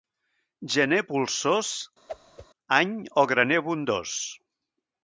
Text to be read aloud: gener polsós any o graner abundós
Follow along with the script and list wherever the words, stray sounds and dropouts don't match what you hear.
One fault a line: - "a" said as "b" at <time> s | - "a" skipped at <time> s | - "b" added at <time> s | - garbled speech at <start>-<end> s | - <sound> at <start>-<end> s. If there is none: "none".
- whoosh at 2.1-2.5 s